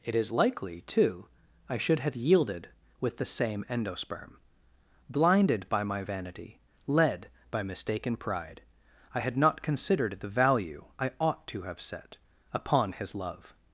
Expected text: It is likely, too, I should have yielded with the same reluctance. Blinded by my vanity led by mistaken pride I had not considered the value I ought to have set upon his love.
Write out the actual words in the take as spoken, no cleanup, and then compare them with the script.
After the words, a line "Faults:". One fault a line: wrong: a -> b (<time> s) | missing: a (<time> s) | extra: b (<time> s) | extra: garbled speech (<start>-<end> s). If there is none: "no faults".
It is likely, too, I should have yielded with the same endosperm. Blinded by my vanity led by mistaken pride I had not considered the value I ought to have set upon his love.
Faults:
wrong: reluctance -> endosperm (3.7 s)